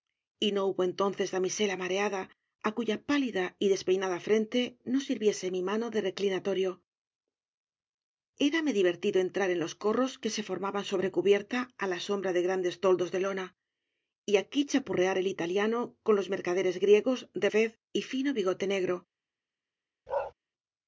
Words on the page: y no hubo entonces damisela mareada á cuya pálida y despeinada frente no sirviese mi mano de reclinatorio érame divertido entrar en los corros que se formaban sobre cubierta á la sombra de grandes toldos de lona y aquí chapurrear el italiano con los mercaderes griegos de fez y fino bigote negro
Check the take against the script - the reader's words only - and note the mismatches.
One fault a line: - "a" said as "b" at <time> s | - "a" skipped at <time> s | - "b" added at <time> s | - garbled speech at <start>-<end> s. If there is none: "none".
none